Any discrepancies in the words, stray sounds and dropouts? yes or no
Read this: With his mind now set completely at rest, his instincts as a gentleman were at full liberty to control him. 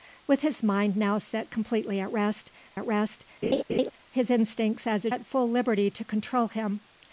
yes